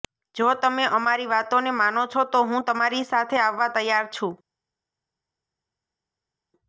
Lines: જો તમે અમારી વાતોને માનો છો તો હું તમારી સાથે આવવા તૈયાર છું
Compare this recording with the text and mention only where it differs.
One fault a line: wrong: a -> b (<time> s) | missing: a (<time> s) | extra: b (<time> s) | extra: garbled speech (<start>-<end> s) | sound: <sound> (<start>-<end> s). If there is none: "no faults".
no faults